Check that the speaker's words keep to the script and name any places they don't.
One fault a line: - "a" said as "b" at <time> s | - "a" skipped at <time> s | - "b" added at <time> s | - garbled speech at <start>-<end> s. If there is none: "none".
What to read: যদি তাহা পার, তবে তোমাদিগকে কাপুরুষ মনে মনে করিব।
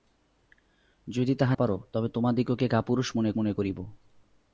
none